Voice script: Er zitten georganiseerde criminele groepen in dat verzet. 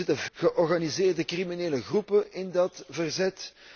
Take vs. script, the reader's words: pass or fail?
pass